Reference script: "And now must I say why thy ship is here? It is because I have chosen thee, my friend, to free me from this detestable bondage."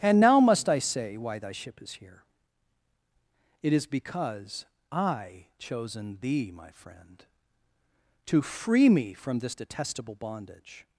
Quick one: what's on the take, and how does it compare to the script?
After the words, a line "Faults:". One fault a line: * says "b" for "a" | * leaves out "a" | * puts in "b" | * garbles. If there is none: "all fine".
"And now must I say why thy ship is here? It is because I chosen thee, my friend, to free me from this detestable bondage."
Faults:
* leaves out "have"